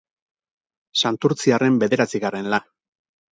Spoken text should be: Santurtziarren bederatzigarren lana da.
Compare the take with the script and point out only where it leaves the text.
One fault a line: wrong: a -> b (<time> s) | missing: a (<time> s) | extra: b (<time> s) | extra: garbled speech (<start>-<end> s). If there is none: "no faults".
missing: lana (2.5 s)